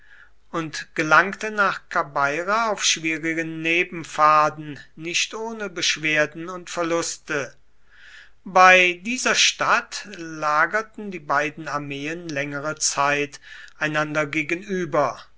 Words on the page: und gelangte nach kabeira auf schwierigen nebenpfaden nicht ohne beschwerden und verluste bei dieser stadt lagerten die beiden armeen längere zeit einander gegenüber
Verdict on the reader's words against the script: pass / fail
pass